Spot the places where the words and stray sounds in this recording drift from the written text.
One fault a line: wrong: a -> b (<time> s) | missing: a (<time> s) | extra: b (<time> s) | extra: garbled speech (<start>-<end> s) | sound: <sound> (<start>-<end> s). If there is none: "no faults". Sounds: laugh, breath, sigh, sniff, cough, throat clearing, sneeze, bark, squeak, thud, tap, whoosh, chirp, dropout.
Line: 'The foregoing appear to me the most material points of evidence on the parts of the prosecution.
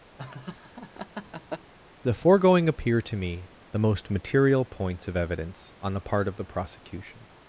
sound: laugh (0.2-1.7 s)
wrong: parts -> part (6.0 s)